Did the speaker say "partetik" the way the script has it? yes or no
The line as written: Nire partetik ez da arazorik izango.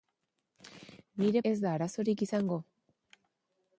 no